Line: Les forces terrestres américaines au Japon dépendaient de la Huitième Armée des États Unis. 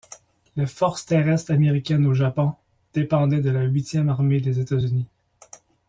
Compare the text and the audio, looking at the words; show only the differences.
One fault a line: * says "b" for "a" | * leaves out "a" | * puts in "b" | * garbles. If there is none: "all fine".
all fine